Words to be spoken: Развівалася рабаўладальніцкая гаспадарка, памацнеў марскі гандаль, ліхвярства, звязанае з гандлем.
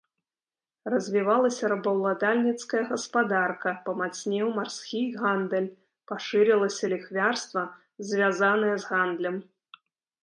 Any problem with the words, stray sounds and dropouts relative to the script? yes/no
yes